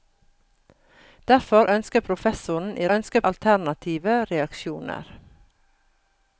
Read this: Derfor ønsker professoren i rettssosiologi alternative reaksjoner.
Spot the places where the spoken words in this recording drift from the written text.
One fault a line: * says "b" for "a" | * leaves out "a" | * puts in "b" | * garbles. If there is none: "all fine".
* says "ønsker" for "rettssosiologi"